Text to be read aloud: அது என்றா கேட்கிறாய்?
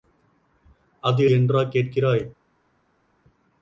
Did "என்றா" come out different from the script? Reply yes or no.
no